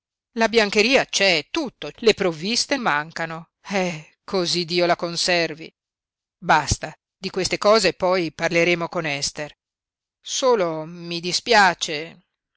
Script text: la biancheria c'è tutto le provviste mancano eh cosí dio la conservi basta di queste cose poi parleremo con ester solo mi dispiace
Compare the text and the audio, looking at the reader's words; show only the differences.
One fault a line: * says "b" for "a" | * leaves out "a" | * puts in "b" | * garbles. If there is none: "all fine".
all fine